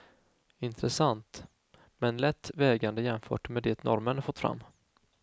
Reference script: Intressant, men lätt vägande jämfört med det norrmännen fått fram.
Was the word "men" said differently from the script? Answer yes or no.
no